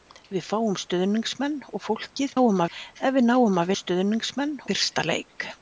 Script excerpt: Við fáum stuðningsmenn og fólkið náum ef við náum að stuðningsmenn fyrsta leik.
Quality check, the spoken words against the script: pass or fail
pass